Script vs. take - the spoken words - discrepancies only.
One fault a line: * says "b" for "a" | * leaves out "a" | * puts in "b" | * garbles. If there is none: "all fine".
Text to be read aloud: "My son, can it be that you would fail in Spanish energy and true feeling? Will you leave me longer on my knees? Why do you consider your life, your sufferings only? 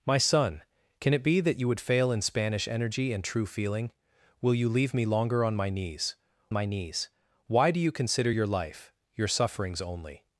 * puts in "my knees"